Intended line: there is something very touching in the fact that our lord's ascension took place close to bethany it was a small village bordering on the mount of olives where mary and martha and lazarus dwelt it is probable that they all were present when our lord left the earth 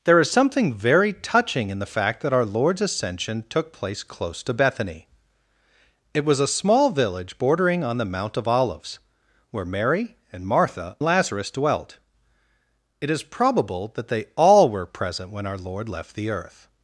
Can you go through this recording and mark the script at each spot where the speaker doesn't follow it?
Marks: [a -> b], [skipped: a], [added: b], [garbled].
there is something very touching in the fact that our lord's ascension took place close to bethany it was a small village bordering on the mount of olives where mary and martha [skipped: and] lazarus dwelt it is probable that they all were present when our lord left the earth